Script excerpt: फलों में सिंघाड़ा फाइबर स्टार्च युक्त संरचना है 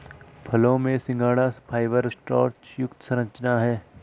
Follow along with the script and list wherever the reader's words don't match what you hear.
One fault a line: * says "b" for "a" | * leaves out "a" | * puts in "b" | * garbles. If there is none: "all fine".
all fine